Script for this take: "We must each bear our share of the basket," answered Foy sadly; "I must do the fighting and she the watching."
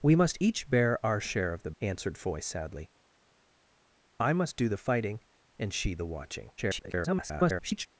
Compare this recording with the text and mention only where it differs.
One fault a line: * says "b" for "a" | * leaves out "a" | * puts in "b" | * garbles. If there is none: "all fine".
* leaves out "basket"
* garbles